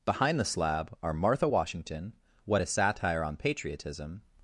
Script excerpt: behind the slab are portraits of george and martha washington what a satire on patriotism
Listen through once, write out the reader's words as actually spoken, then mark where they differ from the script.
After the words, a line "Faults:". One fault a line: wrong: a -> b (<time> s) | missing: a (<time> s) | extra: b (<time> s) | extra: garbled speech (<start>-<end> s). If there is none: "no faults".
behind the slab are martha washington what a satire on patriotism
Faults:
missing: portraits of george and (1.1 s)